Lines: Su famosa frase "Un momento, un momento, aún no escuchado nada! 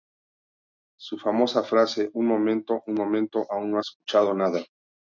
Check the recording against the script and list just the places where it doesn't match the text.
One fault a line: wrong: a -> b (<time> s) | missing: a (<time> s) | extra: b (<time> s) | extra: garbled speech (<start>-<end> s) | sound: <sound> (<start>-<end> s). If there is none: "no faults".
no faults